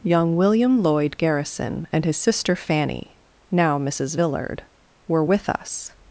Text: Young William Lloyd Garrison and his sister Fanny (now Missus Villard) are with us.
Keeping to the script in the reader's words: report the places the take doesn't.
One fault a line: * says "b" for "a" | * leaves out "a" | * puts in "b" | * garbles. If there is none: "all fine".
* says "were" for "are"